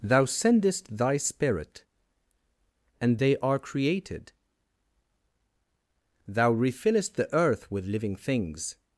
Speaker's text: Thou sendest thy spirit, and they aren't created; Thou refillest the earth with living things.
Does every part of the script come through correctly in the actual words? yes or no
no